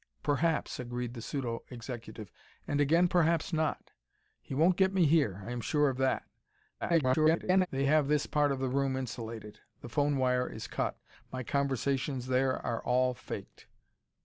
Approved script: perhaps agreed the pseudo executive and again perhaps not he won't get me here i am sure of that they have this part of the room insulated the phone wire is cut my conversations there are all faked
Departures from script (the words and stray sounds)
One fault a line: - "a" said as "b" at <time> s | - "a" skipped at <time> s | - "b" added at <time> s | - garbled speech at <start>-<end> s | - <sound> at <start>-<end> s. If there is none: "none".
- garbled speech at 6.8-7.7 s